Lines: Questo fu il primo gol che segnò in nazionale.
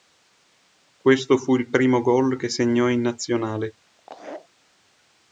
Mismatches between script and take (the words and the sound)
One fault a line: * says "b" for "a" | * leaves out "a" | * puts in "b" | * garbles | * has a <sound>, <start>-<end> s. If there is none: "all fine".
* has a laugh, 4.0-4.5 s